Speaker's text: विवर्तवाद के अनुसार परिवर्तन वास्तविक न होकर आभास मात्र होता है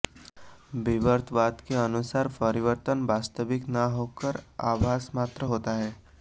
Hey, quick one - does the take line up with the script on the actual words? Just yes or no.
yes